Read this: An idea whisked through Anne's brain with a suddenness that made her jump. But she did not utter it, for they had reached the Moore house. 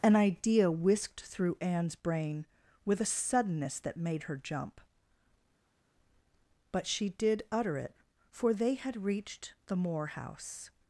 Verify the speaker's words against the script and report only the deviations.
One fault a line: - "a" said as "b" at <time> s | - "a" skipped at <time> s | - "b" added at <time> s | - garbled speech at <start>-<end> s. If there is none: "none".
- "not" skipped at 7.4 s